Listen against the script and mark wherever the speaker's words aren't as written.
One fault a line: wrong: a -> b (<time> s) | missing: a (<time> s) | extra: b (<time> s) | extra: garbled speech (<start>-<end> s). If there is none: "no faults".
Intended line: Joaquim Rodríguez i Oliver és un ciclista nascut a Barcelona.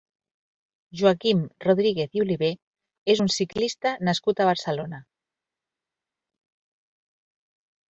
no faults